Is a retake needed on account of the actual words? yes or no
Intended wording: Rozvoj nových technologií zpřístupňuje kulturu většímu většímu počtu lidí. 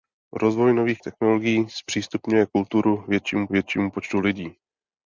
no